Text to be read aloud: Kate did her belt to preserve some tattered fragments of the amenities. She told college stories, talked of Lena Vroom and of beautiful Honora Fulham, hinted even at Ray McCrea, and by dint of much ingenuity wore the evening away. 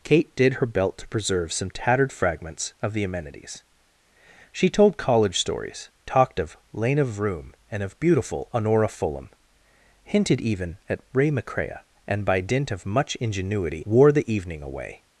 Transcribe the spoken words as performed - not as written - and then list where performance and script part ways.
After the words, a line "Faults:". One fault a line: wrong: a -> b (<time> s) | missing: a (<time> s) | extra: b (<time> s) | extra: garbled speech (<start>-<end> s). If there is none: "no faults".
Kate did her belt to preserve some tattered fragments of the amenities. She told college stories, talked of Lena Vroom and of beautiful Honora Fulham, hinted even at Ray McCrea, and by dint of much ingenuity wore the evening away.
Faults:
no faults